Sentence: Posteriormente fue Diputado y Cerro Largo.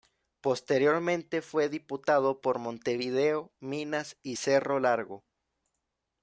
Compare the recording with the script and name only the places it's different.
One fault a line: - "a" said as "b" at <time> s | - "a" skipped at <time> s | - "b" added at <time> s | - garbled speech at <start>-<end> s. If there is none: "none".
- "por Montevideo Minas" added at 2.4 s